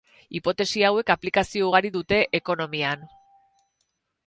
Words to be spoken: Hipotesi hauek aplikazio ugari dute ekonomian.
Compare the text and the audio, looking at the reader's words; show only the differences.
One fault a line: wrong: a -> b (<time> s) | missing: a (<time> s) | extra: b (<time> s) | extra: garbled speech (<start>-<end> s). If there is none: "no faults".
no faults